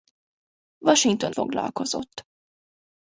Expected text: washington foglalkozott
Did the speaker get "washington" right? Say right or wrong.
right